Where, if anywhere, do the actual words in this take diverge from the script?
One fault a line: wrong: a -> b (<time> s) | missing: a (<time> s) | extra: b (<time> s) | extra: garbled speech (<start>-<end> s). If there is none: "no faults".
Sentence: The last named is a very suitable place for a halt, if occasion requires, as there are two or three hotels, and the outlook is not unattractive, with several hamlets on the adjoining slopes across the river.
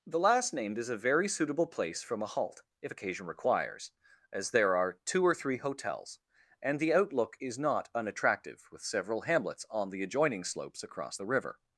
wrong: for -> from (2.0 s)